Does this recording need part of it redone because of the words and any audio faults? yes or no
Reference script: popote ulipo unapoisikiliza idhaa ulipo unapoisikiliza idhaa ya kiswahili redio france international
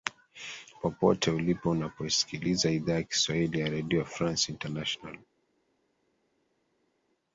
yes